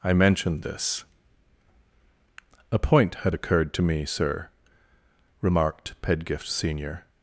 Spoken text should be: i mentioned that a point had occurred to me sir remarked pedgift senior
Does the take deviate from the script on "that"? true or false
true